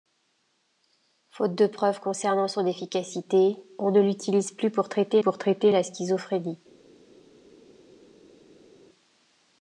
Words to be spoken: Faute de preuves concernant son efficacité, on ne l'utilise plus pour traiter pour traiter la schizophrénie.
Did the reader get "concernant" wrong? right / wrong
right